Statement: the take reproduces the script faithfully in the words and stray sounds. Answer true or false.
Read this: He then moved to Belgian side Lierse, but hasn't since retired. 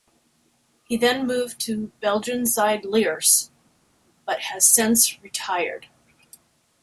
false